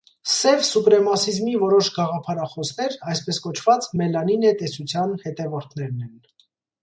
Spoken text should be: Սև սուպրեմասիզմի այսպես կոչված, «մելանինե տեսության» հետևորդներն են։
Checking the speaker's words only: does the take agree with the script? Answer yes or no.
no